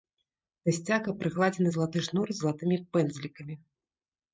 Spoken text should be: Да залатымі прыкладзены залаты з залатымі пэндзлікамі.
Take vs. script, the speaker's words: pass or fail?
fail